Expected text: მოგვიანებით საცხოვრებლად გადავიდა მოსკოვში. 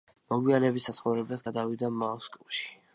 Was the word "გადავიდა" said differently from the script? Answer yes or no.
no